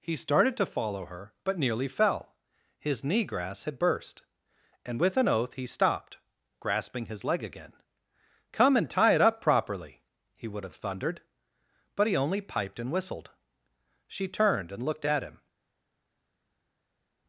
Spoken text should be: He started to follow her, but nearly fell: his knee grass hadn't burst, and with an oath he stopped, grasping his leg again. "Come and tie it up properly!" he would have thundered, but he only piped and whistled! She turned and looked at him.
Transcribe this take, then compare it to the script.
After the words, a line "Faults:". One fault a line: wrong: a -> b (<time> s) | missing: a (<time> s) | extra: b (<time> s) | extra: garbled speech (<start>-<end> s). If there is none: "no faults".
He started to follow her, but nearly fell: his knee grass had burst, and with an oath he stopped, grasping his leg again. "Come and tie it up properly!" he would have thundered, but he only piped and whistled! She turned and looked at him.
Faults:
wrong: hadn't -> had (3.6 s)